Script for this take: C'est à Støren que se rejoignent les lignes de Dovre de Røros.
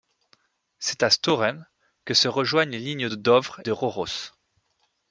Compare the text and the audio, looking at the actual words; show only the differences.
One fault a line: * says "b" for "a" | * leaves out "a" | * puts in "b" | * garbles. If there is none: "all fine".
all fine